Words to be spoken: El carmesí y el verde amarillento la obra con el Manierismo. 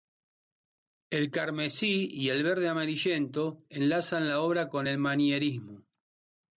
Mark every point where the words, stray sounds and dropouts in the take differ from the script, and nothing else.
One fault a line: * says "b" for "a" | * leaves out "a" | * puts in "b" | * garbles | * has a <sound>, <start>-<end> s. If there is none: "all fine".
* puts in "enlazan"